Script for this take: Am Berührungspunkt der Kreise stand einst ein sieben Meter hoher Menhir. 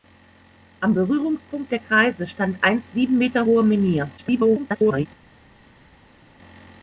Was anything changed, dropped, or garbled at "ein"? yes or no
yes